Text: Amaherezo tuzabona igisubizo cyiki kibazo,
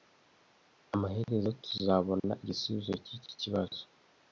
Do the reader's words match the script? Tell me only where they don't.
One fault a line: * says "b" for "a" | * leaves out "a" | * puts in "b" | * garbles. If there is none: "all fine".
all fine